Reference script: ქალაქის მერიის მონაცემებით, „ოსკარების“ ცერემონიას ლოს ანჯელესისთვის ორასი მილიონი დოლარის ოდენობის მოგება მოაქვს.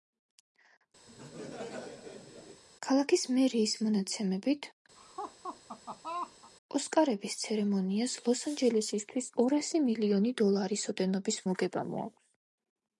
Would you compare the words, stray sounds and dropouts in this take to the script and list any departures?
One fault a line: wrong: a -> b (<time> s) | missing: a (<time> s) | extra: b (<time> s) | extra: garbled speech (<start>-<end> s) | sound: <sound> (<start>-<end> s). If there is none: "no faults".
sound: laugh (1.1-2.6 s)
sound: laugh (5.0-6.5 s)